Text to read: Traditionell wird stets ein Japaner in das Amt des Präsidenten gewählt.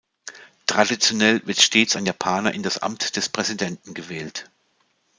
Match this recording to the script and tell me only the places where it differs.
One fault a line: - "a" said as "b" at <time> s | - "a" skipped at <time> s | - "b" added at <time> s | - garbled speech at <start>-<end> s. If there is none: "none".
none